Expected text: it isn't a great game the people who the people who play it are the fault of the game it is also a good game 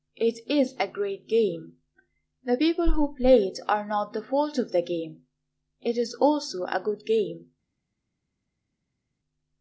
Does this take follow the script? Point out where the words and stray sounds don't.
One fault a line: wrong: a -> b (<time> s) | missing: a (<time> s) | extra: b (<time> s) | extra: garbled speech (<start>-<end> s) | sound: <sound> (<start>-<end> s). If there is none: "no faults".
wrong: isn't -> is (0.5 s)
missing: the people who (3.1 s)
extra: not (3.9 s)